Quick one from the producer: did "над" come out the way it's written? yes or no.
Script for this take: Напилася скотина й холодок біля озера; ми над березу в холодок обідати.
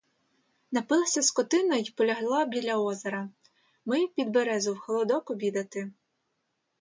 no